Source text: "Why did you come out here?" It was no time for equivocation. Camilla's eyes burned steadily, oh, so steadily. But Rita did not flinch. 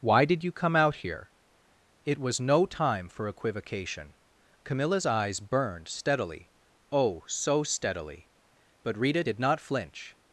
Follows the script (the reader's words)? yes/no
yes